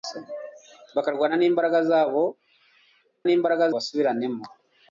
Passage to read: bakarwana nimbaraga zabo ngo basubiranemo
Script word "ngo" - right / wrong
wrong